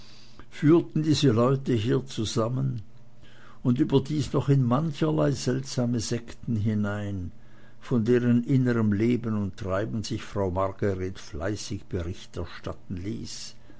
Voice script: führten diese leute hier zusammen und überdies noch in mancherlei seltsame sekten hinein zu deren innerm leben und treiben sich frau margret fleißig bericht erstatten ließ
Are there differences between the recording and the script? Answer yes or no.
yes